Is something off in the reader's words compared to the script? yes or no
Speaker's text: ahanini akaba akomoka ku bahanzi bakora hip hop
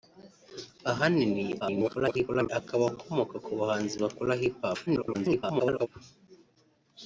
yes